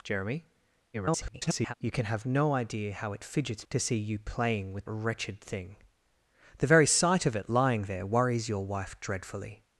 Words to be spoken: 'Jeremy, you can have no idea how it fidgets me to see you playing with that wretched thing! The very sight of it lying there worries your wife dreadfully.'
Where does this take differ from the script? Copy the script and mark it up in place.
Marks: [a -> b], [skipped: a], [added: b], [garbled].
'Jeremy, [garbled] you can have no idea how it fidgets [skipped: me] to see you playing with [skipped: that] wretched thing! The very sight of it lying there worries your wife dreadfully.'